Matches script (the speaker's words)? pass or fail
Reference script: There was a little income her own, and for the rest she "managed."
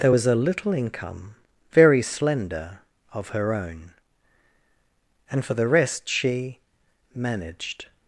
fail